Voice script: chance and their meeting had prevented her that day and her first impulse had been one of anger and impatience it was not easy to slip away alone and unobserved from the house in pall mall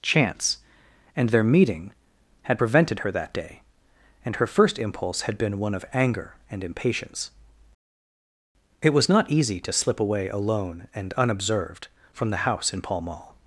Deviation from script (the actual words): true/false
false